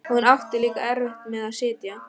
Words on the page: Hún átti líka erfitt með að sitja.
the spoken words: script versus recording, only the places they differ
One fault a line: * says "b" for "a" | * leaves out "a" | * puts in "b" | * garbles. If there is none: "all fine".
all fine